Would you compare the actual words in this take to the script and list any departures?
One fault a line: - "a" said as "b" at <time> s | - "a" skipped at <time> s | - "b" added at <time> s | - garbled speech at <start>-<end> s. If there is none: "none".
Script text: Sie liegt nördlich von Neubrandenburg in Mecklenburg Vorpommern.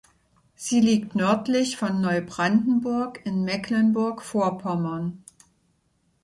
none